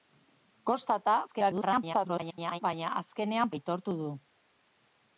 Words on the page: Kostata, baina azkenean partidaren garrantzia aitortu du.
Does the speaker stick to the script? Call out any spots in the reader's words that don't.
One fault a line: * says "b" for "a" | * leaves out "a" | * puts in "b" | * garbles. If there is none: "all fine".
* garbles
* leaves out "partidaren garrantzia"